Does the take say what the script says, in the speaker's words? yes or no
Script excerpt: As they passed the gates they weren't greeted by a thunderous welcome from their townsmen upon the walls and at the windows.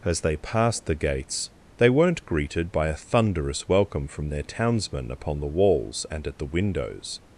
yes